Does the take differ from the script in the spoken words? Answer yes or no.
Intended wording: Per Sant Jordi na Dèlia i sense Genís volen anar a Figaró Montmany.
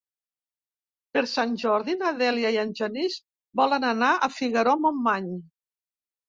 yes